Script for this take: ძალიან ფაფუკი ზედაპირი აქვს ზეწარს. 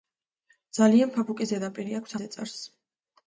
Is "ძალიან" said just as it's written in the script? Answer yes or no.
yes